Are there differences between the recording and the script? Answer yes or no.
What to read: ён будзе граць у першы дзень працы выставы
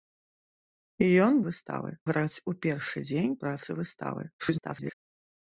yes